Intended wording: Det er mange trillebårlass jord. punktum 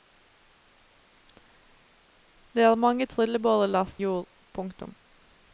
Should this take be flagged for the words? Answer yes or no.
no